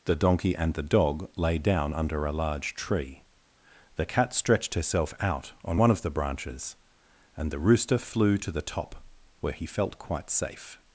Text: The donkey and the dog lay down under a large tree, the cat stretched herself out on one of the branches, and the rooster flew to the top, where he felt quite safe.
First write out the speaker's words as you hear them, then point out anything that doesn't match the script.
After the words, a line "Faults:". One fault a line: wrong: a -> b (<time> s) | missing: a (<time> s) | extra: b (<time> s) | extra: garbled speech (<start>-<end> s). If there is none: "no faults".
The donkey and the dog lay down under a large tree, the cat stretched herself out on one of the branches, and the rooster flew to the top, where he felt quite safe.
Faults:
no faults